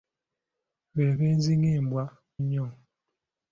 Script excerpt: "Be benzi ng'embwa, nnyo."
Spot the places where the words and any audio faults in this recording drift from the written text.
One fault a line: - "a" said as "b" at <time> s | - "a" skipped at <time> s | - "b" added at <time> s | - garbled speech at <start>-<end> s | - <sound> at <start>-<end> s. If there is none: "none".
none